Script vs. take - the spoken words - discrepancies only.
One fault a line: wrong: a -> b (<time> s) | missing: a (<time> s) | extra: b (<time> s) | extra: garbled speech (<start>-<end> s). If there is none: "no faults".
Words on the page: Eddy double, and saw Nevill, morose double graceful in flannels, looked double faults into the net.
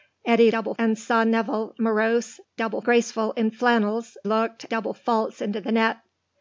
no faults